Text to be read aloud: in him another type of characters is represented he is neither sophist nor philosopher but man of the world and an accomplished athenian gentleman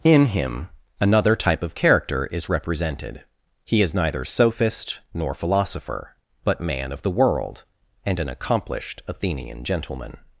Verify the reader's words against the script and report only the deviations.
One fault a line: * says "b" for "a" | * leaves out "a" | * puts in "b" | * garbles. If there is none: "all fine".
* says "character" for "characters"